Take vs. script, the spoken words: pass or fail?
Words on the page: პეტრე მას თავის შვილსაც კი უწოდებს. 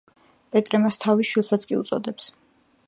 pass